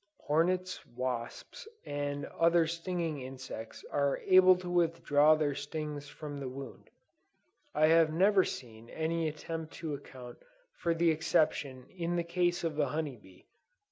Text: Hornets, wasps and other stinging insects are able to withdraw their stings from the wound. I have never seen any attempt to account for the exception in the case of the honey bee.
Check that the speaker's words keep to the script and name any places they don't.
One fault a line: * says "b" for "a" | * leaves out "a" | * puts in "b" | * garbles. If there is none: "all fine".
all fine